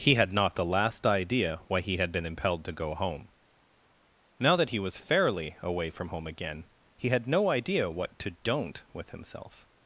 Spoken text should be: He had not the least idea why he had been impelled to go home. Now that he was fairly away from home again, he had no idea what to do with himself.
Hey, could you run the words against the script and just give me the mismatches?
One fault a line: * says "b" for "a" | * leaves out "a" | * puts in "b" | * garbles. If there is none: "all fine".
* says "last" for "least"
* says "don't" for "do"